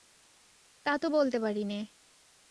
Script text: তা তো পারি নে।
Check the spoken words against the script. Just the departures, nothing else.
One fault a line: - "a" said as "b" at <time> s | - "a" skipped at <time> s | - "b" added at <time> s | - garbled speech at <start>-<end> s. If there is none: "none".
- "বলতে" added at 1.1 s